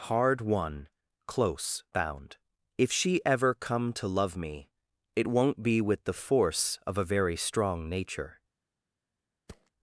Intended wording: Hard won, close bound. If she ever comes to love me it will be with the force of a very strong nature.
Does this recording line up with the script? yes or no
no